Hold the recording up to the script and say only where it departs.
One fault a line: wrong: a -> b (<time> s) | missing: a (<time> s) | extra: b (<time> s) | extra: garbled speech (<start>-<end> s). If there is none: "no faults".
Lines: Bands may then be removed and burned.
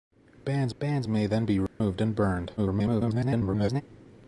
extra: bands (0.8 s)
extra: garbled speech (2.6-3.8 s)